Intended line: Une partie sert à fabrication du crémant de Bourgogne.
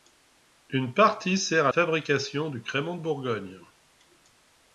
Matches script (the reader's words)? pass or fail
pass